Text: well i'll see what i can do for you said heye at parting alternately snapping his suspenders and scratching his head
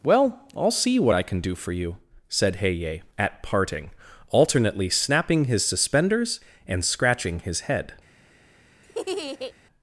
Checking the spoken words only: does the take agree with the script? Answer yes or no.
yes